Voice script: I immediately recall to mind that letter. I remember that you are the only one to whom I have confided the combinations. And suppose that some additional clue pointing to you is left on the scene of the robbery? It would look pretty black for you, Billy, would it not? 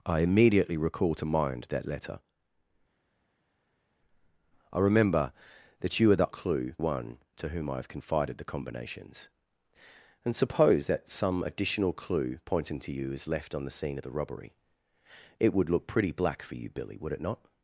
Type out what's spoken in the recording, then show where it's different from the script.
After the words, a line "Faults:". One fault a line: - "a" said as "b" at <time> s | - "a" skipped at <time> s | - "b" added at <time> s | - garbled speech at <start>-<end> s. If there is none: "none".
I immediately recall to mind that letter. I remember that you are the clue one to whom I have confided the combinations. And suppose that some additional clue pointing to you is left on the scene of the robbery? It would look pretty black for you, Billy, would it not?
Faults:
- "only" said as "clue" at 6.3 s